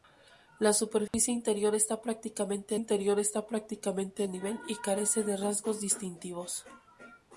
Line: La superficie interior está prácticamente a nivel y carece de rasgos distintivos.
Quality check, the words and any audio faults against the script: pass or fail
fail